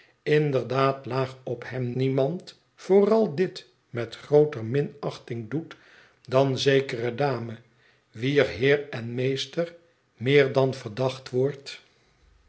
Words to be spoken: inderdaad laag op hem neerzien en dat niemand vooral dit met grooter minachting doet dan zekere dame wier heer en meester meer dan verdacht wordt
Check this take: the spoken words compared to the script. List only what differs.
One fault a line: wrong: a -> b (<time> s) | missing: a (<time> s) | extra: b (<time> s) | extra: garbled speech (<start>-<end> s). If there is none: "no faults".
missing: neerzien en dat (1.9 s)